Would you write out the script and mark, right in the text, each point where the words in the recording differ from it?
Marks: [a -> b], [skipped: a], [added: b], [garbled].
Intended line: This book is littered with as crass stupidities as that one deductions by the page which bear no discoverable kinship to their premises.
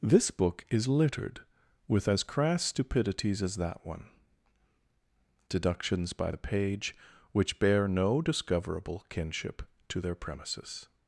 This book is littered with as crass stupidities as that one deductions by the page which bear no discoverable kinship to their premises.